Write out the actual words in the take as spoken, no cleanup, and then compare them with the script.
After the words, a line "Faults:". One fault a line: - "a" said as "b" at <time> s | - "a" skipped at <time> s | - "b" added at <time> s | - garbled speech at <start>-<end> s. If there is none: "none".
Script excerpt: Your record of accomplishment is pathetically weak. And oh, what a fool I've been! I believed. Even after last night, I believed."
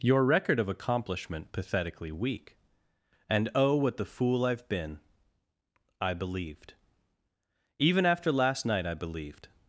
Your record of accomplishment pathetically weak. And oh, what the fool I've been! I believed. Even after last night, I believed."
Faults:
- "is" skipped at 1.5 s
- "a" said as "the" at 4.0 s